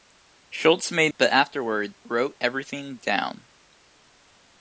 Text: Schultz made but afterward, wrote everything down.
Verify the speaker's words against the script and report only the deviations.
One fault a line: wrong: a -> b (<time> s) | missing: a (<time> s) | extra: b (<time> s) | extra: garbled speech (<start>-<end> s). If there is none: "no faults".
no faults